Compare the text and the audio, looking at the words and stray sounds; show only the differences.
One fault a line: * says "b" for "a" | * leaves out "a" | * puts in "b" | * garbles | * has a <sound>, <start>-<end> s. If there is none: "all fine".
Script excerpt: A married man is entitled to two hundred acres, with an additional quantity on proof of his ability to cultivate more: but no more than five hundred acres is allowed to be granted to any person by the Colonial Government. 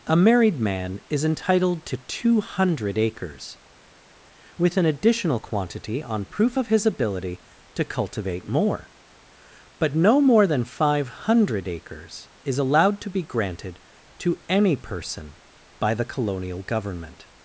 all fine